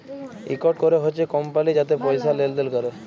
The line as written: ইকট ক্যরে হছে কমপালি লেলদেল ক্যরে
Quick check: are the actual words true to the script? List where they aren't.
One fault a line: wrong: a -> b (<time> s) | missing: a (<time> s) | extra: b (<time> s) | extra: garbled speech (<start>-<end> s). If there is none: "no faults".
extra: যাতে পয়সা (1.7 s)